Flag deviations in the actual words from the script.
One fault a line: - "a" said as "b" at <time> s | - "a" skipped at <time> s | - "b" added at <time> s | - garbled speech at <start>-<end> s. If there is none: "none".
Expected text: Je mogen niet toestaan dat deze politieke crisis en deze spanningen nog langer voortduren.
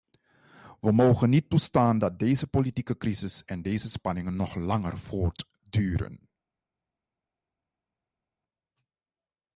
- "Je" said as "We" at 0.8 s